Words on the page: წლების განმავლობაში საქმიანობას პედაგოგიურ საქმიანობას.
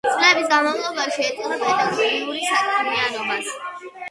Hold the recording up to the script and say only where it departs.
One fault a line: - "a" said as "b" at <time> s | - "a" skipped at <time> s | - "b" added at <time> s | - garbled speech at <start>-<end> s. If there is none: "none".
- "საქმიანობას" said as "ეწოდა" at 1.3 s